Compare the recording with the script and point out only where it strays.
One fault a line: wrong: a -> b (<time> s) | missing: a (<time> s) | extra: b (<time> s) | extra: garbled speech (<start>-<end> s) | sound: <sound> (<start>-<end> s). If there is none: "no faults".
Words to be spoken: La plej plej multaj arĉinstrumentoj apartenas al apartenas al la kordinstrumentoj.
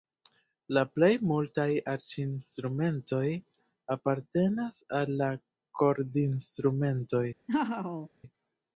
missing: plej (1.1 s)
missing: apartenas al (5.2 s)
sound: laugh (7.5-8.1 s)